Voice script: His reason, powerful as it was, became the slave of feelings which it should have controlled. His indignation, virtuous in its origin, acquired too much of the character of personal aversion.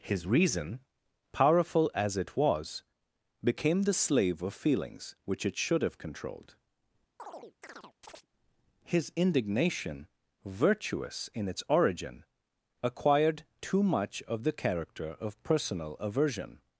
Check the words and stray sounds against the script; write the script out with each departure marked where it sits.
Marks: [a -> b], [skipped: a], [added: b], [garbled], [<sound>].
His reason, powerful as it was, became the slave of feelings which it should have controlled. [chirp] His indignation, virtuous in its origin, acquired too much of the character of personal aversion.